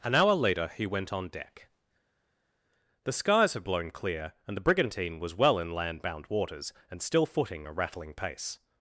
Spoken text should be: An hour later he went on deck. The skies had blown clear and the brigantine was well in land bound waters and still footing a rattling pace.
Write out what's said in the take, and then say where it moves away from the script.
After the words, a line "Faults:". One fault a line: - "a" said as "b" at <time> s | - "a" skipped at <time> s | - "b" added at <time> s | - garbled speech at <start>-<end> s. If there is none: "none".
An hour later he went on deck. The skies had blown clear and the brigantine was well in land bound waters and still footing a rattling pace.
Faults:
none